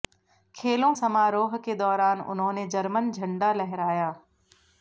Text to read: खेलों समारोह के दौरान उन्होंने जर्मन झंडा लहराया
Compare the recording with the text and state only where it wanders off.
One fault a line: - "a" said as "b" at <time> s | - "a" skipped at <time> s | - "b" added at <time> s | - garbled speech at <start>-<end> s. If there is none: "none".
none